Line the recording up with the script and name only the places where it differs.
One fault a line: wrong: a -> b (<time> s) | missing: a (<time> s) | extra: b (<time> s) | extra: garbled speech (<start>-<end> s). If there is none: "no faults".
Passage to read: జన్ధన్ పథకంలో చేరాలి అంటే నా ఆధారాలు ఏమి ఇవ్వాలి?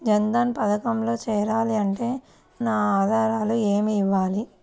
no faults